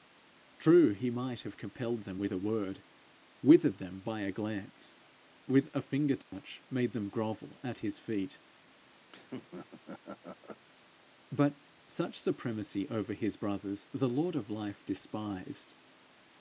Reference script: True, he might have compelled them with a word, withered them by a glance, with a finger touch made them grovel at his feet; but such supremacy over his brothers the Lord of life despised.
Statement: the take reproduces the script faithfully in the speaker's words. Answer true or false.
true